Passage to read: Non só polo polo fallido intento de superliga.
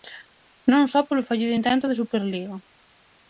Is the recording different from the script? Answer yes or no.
yes